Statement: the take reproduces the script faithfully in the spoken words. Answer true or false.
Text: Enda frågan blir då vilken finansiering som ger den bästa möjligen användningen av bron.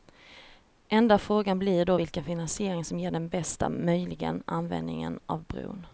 true